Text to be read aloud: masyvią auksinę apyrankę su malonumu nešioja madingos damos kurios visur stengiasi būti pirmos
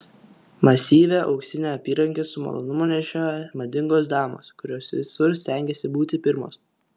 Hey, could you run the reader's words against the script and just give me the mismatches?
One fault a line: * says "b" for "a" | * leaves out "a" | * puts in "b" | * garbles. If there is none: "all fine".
all fine